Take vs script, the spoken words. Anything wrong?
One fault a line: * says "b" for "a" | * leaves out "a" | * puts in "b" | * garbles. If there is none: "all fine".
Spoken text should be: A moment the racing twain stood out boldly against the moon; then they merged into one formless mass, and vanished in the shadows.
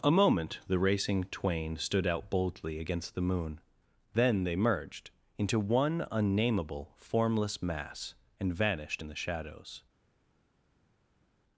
* puts in "unnameable"